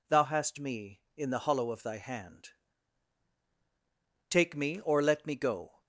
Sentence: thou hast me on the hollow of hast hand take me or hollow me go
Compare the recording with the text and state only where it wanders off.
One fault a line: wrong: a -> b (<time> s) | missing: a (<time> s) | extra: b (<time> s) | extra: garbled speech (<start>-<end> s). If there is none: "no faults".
wrong: on -> in (1.1 s)
wrong: hast -> thy (1.8 s)
wrong: hollow -> let (5.0 s)